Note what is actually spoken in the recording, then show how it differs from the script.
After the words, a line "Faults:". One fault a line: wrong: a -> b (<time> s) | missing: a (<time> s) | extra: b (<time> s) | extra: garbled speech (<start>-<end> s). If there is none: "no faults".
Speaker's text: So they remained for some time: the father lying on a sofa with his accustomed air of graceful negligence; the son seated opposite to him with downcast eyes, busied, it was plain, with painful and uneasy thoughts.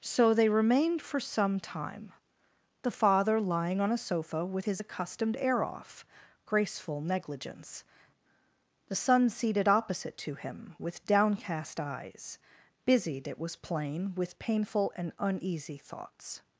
So they remained for some time: the father lying on a sofa with his accustomed air off graceful negligence; the son seated opposite to him with downcast eyes, busied, it was plain, with painful and uneasy thoughts.
Faults:
wrong: of -> off (5.6 s)